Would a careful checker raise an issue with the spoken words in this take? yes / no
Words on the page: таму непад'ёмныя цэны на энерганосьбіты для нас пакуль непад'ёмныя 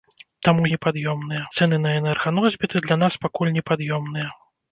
no